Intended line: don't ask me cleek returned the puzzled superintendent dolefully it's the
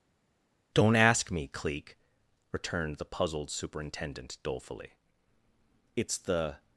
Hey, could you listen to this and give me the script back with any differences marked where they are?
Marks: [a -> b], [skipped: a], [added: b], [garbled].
don't ask me cleek returned the puzzled superintendent dolefully it's the